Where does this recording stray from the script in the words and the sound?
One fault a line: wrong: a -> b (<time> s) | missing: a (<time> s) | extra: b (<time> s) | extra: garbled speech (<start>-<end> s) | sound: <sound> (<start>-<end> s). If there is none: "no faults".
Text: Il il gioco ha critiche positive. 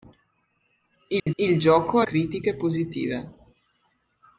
sound: dropout (1.2-1.3 s)